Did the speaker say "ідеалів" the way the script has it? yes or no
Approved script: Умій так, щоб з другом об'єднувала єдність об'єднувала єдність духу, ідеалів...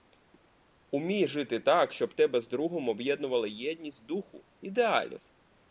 yes